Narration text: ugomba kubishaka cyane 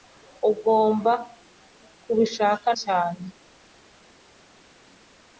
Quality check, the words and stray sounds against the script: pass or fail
pass